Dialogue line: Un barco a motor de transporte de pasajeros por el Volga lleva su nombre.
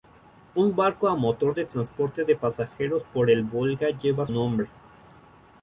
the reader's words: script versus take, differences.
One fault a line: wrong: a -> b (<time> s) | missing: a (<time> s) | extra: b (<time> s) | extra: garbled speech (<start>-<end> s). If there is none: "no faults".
missing: su (4.3 s)